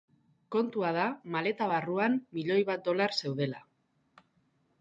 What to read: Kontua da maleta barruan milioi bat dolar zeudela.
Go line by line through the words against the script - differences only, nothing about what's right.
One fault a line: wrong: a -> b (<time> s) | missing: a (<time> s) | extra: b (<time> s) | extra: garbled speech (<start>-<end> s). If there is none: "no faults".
no faults